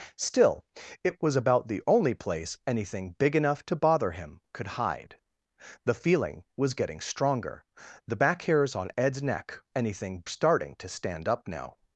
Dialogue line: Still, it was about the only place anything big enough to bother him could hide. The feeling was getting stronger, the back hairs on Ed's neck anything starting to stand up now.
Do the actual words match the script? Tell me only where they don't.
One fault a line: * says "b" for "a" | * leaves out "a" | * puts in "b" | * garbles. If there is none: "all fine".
all fine